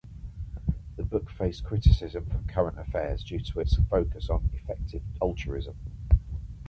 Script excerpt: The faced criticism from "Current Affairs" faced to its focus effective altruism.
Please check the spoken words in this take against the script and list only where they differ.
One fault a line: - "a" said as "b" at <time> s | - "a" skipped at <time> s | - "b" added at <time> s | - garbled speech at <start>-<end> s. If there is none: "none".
- "book" added at 1.0 s
- "faced" said as "due" at 3.2 s
- "on" added at 4.3 s